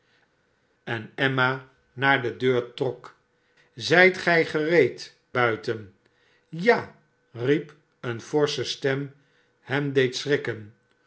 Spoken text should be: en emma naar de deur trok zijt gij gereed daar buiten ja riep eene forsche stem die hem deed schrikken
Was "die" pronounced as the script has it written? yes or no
no